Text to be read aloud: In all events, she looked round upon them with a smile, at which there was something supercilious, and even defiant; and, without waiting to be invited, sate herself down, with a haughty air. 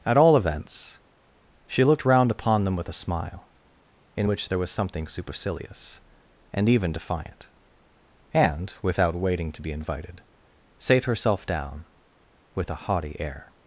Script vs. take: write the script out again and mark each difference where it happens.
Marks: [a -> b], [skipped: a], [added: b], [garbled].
[In -> At] all events, she looked round upon them with a smile, [at -> in] which there was something supercilious, and even defiant; and, without waiting to be invited, sate herself down, with a haughty air.